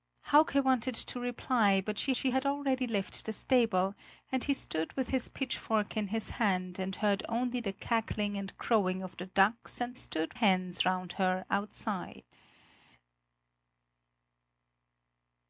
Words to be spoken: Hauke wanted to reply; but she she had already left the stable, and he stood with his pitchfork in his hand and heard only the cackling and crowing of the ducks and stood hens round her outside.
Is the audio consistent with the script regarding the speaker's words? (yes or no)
yes